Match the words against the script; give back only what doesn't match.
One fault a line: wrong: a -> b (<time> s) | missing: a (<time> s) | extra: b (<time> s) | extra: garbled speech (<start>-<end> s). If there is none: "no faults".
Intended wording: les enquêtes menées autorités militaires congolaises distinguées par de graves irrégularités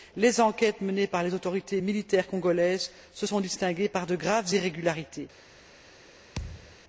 extra: par les (1.1 s)
extra: se sont (3.1 s)